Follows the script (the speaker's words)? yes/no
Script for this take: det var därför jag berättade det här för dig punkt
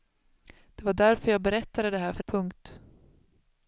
no